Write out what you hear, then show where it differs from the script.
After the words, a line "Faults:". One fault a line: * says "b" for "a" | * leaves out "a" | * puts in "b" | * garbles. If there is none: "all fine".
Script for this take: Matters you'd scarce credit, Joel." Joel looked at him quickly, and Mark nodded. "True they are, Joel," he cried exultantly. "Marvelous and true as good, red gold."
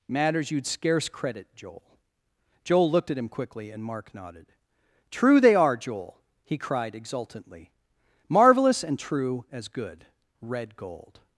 Matters you'd scarce credit, Joel." Joel looked at him quickly, and Mark nodded. "True they are, Joel," he cried exultantly. "Marvelous and true as good, red gold."
Faults:
all fine